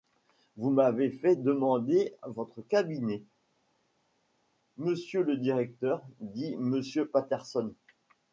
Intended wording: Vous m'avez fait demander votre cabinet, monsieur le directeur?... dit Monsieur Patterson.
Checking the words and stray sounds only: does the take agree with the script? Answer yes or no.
yes